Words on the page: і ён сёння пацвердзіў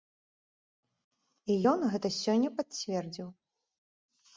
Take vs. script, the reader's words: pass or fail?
fail